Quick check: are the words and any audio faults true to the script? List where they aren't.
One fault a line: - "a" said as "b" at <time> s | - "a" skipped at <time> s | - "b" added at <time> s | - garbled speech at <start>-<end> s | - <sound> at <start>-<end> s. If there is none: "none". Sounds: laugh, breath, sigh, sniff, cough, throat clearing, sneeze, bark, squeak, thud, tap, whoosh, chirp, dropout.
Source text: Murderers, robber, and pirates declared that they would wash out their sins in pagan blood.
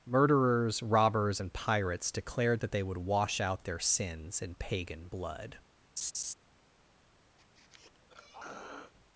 - "robber" said as "robbers" at 0.8 s
- laugh at 6.0-6.3 s
- throat clearing at 7.4-8.9 s